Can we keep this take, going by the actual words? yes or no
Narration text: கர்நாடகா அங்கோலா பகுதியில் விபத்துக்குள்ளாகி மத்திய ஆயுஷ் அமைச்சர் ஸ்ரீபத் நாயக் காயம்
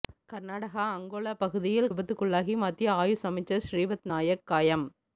yes